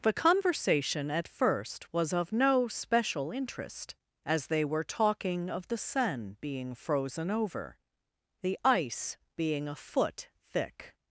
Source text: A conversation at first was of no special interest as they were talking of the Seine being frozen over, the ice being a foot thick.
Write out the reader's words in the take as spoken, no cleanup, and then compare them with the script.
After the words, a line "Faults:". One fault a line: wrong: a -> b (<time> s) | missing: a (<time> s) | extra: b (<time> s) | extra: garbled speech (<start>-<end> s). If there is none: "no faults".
The conversation at first was of no special interest as they were talking of the Seine being frozen over, the ice being a foot thick.
Faults:
wrong: A -> The (0.0 s)